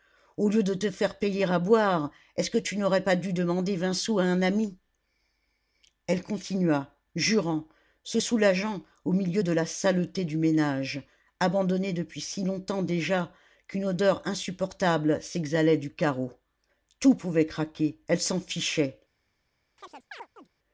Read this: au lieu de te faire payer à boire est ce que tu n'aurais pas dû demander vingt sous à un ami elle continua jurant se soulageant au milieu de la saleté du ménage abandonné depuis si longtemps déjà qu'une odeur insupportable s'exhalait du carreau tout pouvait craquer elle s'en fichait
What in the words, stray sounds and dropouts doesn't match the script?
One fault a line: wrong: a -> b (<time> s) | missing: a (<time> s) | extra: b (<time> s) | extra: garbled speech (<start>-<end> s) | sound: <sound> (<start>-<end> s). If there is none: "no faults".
sound: chirp (19.8-20.5 s)